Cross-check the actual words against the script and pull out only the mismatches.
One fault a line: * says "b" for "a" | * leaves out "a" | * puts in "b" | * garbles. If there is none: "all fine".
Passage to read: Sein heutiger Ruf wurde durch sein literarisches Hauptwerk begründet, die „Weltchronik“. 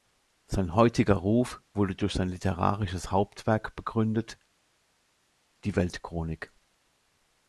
all fine